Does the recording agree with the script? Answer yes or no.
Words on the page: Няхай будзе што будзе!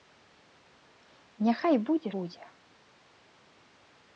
no